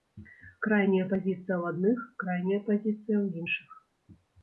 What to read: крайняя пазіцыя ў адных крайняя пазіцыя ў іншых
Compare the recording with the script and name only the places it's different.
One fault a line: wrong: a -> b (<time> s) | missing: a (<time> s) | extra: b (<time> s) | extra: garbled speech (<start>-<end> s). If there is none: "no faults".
no faults